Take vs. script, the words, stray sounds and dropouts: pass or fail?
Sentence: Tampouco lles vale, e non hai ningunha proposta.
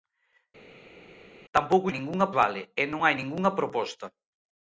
fail